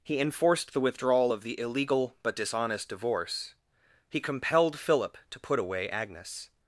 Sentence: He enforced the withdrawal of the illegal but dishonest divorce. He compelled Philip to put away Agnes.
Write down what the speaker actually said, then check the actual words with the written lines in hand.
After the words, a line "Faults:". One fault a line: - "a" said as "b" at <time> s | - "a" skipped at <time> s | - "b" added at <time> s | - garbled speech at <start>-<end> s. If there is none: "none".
He enforced the withdrawal of the illegal but dishonest divorce. He compelled Philip to put away Agnes.
Faults:
none